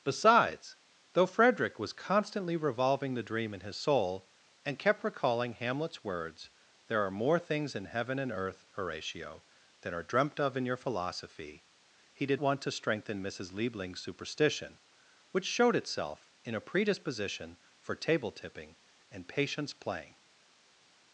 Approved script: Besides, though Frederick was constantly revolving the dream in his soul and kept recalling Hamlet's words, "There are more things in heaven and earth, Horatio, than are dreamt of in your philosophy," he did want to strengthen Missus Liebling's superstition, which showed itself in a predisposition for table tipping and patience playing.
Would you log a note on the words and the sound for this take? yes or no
no